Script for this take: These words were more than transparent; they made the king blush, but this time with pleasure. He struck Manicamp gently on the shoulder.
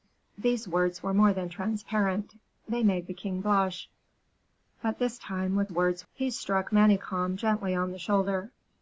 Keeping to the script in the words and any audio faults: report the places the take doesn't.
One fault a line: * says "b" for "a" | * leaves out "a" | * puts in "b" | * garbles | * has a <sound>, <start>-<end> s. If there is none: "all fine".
* says "words" for "pleasure"